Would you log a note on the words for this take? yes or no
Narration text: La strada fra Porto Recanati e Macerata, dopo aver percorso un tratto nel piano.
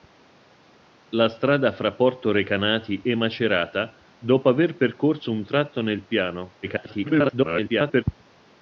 yes